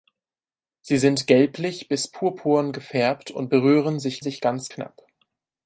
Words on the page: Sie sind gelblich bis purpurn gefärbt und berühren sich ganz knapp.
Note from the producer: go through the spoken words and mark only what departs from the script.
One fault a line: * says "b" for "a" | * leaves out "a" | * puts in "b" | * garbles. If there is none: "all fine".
* puts in "sich"